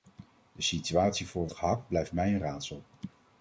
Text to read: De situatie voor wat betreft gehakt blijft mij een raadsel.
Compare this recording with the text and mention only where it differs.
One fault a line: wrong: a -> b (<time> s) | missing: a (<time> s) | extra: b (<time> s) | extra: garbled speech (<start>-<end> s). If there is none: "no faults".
missing: wat betreft (1.5 s)